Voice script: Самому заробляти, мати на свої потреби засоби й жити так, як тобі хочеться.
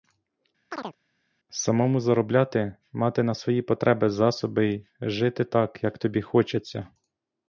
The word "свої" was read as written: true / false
true